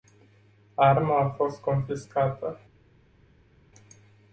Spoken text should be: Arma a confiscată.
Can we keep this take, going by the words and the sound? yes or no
no